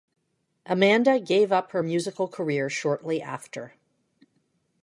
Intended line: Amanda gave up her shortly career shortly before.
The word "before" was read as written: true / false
false